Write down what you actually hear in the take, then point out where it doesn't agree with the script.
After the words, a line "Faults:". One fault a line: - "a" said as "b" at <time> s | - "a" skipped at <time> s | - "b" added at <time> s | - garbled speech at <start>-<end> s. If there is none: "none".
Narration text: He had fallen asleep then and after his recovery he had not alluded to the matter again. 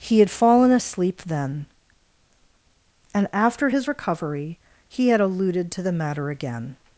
He had fallen asleep then and after his recovery he had alluded to the matter again.
Faults:
- "not" skipped at 5.2 s